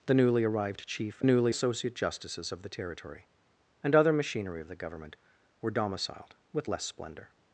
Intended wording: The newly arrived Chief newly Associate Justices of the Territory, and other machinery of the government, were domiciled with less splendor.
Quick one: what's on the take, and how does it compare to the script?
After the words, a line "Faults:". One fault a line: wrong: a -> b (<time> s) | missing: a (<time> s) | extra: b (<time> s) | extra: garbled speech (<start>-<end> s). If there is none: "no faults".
The newly arrived Chief newly Associate Justices of the Territory, and other machinery of the government, were domiciled with less splendor.
Faults:
no faults